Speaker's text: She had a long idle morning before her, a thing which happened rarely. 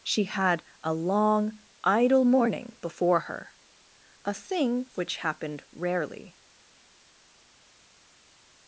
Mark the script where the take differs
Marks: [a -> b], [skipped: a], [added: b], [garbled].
She had a long idle morning before her, a thing which happened rarely.